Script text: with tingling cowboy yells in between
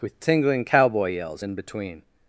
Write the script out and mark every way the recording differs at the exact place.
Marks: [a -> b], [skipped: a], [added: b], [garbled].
with tingling cowboy yells in between